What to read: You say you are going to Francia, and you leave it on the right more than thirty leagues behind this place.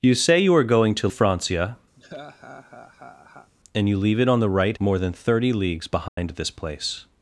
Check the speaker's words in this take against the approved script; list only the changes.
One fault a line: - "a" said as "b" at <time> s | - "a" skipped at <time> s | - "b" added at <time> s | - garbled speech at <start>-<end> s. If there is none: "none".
none